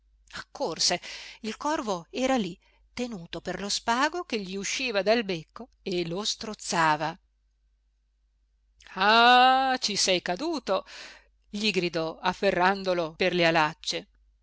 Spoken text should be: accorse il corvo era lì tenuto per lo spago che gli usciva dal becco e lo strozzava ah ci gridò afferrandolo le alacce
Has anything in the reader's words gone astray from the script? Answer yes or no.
yes